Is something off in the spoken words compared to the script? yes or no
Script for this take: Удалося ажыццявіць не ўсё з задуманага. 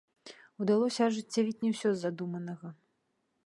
no